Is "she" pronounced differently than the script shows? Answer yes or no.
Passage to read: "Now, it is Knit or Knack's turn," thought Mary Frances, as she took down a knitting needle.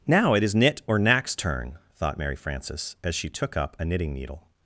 no